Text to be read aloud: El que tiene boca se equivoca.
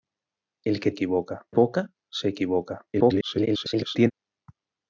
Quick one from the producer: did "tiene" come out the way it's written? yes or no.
no